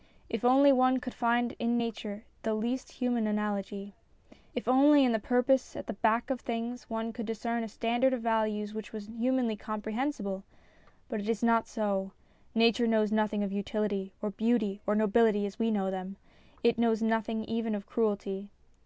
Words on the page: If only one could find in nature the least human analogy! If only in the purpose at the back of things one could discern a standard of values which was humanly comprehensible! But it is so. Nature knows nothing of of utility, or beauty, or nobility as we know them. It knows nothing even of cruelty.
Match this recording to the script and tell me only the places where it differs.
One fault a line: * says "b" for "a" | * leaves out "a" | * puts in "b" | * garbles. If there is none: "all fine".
* puts in "not"
* leaves out "of"